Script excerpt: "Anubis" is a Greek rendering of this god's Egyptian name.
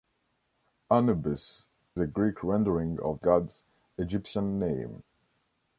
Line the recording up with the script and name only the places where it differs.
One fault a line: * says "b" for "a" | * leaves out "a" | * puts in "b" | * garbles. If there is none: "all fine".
* leaves out "is"
* leaves out "this"